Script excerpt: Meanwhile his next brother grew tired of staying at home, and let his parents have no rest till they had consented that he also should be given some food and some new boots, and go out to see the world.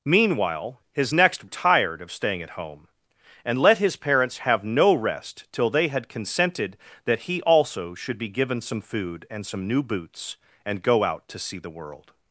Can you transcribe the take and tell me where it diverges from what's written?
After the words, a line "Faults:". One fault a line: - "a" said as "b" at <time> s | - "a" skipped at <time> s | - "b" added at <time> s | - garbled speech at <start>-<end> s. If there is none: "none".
Meanwhile his next tired of staying at home, and let his parents have no rest till they had consented that he also should be given some food and some new boots, and go out to see the world.
Faults:
- "brother grew" skipped at 1.5 s